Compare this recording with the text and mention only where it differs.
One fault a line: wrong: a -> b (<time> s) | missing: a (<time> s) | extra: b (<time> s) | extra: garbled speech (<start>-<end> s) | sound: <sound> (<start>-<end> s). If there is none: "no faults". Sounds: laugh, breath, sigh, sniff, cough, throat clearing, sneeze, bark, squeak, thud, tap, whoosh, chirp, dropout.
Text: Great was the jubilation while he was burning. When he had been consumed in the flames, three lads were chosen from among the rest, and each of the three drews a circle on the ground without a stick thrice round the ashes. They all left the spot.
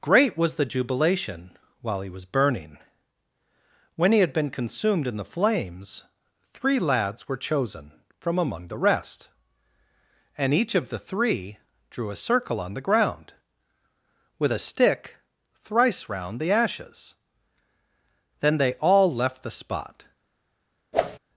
wrong: drews -> drew (11.9 s)
wrong: without -> with (14.4 s)
extra: Then (18.4 s)
sound: whoosh (20.9-21.2 s)